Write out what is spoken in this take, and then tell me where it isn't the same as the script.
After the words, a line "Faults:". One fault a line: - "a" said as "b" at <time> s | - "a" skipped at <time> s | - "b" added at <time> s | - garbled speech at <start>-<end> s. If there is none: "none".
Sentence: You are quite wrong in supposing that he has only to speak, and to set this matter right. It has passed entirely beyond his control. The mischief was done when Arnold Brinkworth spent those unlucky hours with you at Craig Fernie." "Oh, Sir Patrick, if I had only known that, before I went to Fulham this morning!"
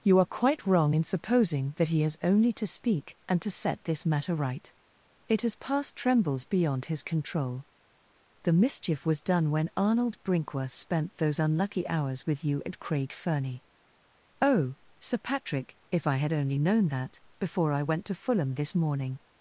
You are quite wrong in supposing that he has only to speak, and to set this matter right. It has passed trembles beyond his control. The mischief was done when Arnold Brinkworth spent those unlucky hours with you at Craig Fernie." "Oh, Sir Patrick, if I had only known that, before I went to Fulham this morning!"
Faults:
- "entirely" said as "trembles" at 6.0 s